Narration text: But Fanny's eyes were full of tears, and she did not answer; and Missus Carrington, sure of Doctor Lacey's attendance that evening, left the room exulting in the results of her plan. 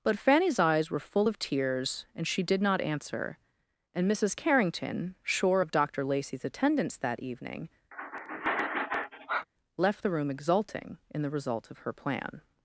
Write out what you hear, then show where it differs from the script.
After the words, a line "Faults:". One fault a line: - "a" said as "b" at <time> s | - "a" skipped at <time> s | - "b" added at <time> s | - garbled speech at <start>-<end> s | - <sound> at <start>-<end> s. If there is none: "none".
But Fanny's eyes were full of tears, and she did not answer; and Missus Carrington, sure of Doctor Lacey's attendance that evening, left the room exulting in the result of her plan.
Faults:
- sigh at 7.9-9.5 s
- "results" said as "result" at 11.3 s